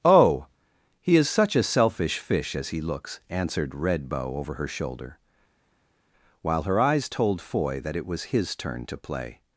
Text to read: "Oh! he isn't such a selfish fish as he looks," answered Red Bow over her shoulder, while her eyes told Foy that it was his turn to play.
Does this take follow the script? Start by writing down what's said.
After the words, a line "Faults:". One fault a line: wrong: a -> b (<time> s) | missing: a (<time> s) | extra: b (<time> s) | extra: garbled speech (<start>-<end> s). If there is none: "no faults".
"Oh! he is such a selfish fish as he looks," answered Red Bow over her shoulder, while her eyes told Foy that it was his turn to play.
Faults:
wrong: isn't -> is (1.1 s)